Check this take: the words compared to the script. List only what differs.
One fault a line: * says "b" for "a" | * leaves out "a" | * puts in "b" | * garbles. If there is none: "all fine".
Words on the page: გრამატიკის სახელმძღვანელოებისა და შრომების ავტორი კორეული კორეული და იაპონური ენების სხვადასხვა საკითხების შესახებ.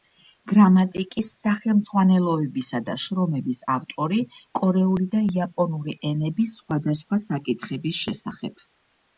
* leaves out "კორეული"